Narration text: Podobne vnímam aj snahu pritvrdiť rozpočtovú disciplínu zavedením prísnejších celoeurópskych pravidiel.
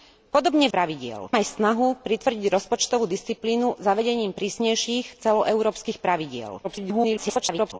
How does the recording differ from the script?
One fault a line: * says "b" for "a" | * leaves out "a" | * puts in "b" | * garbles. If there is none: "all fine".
* says "pravidiel" for "vnímam"
* garbles